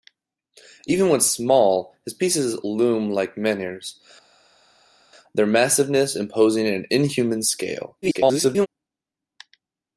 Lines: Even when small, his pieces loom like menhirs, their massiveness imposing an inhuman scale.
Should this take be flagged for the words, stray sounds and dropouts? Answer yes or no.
yes